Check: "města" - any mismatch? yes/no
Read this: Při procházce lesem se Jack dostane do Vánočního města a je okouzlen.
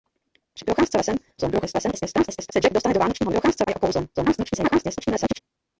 yes